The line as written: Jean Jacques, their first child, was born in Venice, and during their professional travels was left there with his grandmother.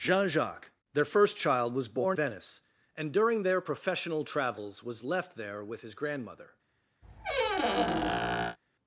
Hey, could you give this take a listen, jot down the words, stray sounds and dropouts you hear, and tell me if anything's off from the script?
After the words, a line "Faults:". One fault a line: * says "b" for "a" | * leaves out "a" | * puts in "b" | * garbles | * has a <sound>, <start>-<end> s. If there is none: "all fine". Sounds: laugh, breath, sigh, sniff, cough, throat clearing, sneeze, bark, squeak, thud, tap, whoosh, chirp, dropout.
Jean Jacques, their first child, was born Venice, and during their professional travels was left there with his grandmother.
Faults:
* leaves out "in"
* has a squeak, 7.0-8.6 s